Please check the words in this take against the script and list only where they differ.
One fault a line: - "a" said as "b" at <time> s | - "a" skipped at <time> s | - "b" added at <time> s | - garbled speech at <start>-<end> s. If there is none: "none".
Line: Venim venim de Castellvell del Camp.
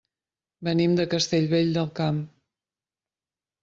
- "venim" skipped at 0.9 s